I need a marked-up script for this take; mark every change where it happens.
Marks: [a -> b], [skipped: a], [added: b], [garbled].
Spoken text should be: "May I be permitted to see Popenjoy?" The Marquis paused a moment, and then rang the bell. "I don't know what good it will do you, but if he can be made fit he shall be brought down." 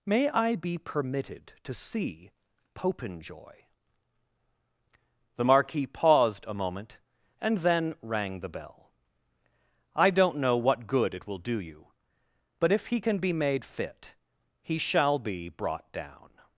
"May I be permitted to see Popenjoy?" The Marquis paused a moment, and then rang the bell. "I don't know what good it will do you, but if he can be made fit he shall be brought down."